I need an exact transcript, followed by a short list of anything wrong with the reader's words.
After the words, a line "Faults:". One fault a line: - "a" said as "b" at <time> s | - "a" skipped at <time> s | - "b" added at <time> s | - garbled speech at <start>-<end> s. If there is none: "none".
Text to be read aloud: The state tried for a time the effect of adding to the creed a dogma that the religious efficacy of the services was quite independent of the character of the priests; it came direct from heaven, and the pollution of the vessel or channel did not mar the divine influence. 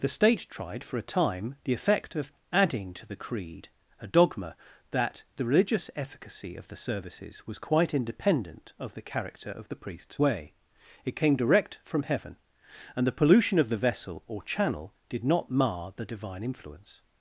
The state tried for a time the effect of adding to the creed a dogma that the religious efficacy of the services was quite independent of the character of the priests; way it came direct from heaven, and the pollution of the vessel or channel did not mar the divine influence.
Faults:
- "way" added at 10.2 s